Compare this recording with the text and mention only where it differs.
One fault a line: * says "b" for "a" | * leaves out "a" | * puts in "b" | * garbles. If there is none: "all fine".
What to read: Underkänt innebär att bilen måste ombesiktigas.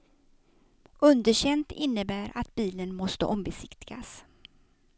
all fine